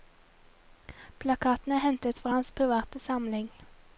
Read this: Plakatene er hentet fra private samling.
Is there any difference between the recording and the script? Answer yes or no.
yes